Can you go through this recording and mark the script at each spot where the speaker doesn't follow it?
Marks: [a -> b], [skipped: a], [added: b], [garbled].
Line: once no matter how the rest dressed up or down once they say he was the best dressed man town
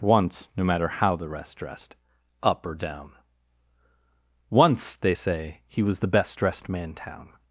once no matter how the rest dressed up or down once they say he was the best dressed man town